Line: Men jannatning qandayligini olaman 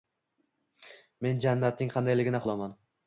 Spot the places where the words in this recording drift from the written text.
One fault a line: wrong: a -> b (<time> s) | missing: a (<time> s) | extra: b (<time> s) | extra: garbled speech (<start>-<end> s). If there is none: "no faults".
no faults